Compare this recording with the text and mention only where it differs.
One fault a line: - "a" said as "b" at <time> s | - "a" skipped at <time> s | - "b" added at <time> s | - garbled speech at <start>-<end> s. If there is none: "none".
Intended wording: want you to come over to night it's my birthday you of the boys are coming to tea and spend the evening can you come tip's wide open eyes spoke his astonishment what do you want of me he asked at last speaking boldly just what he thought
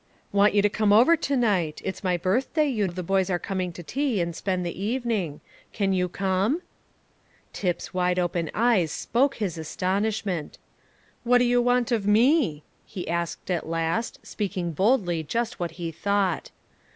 none